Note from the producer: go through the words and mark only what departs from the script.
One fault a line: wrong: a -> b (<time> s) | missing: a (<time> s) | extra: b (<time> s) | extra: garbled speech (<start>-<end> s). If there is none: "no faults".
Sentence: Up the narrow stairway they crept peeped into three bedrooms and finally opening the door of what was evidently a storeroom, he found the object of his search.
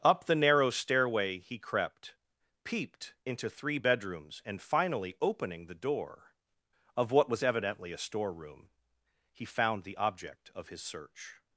wrong: they -> he (1.4 s)